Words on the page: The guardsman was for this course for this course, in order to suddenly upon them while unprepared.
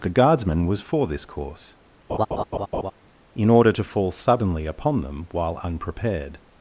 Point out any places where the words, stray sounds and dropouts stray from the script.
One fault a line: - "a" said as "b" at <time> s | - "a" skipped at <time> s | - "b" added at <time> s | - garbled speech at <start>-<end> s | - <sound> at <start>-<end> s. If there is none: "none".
- "for this course" skipped at 1.8 s
- laugh at 2.1-2.9 s
- "fall" added at 3.8 s